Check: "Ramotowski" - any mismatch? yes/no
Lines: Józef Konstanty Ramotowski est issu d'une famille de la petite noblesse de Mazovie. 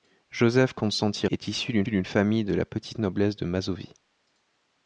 yes